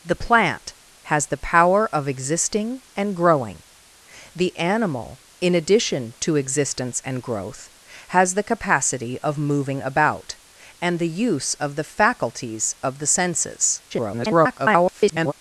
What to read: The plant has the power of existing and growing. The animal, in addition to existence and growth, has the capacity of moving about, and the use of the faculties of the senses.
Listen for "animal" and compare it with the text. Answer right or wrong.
right